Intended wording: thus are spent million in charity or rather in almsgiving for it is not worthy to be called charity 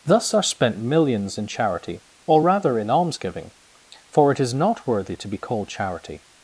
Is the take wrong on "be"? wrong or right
right